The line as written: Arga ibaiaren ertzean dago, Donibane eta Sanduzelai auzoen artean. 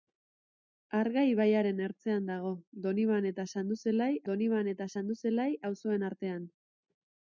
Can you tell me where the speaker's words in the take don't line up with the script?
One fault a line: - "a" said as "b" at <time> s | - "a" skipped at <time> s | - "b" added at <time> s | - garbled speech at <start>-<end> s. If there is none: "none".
- "Donibane eta Sanduzelai" added at 4.3 s